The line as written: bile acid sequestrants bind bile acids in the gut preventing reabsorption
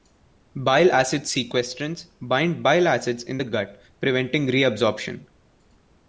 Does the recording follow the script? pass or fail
pass